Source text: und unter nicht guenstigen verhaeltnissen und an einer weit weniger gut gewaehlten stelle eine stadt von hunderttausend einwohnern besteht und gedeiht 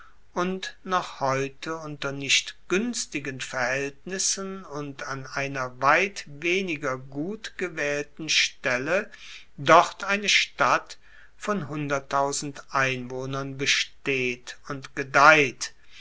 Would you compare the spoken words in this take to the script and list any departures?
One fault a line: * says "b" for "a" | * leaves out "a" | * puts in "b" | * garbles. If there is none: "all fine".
* puts in "noch heute"
* puts in "dort"